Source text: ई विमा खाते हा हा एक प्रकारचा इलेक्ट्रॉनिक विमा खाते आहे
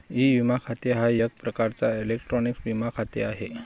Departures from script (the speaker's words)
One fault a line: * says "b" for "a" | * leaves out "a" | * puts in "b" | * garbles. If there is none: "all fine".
* leaves out "हा"